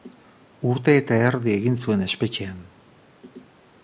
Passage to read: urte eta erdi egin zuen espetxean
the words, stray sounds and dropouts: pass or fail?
pass